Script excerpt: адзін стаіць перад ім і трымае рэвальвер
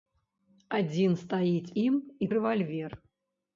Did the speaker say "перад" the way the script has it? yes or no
no